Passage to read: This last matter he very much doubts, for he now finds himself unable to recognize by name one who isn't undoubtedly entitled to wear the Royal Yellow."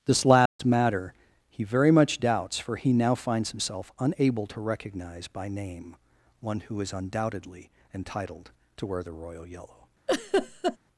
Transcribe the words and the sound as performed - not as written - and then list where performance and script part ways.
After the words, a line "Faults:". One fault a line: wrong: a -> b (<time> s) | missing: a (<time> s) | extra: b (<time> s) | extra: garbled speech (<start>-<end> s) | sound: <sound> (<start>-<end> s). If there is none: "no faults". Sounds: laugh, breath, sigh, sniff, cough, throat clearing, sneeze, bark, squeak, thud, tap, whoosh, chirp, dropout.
This last matter he very much doubts, for he now finds himself unable to recognize by name one who is undoubtedly entitled to wear the Royal Yellow."
Faults:
sound: dropout (0.5-0.6 s)
wrong: isn't -> is (6.8 s)
sound: laugh (10.1-10.8 s)